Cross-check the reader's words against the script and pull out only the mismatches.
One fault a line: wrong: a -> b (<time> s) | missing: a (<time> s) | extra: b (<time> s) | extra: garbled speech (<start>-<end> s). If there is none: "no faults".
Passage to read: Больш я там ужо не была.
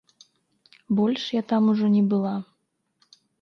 no faults